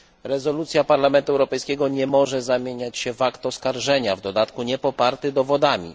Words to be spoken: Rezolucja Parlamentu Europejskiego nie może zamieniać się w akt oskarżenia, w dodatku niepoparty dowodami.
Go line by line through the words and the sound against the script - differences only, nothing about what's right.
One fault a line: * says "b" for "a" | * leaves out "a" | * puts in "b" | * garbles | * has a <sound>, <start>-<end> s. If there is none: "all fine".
all fine